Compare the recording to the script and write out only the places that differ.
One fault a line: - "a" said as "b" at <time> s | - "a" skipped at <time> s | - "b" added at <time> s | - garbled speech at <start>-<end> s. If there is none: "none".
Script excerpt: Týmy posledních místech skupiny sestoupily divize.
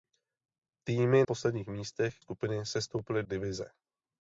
none